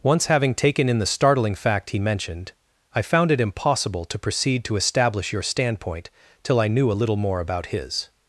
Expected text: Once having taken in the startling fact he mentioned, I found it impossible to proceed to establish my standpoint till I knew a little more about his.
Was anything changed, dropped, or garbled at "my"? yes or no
yes